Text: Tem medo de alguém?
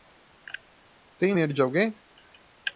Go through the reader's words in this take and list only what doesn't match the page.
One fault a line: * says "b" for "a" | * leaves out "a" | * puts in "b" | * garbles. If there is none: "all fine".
all fine